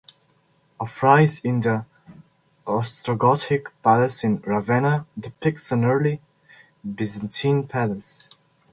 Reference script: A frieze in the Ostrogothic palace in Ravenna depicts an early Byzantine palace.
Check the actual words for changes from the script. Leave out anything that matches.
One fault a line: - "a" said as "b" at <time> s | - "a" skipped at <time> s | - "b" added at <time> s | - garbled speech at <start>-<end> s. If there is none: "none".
none